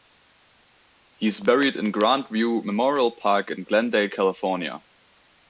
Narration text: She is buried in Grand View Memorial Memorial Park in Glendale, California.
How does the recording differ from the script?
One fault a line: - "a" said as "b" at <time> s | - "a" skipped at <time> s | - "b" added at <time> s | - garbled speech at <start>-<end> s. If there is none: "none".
- "She" said as "He" at 1.1 s
- "Memorial" skipped at 3.1 s